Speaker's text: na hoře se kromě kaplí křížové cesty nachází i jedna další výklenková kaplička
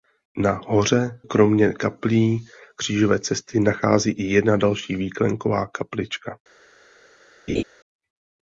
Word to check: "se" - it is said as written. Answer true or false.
false